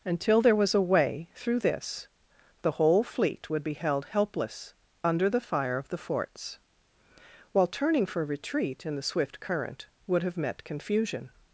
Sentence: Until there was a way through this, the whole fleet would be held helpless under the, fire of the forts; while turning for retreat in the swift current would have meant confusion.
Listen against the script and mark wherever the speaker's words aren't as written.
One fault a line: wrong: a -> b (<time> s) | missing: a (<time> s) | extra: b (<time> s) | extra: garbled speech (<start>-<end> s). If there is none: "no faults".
wrong: meant -> met (10.4 s)